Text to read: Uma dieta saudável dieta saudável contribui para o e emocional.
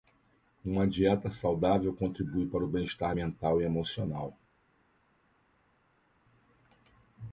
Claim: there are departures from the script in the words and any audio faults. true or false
true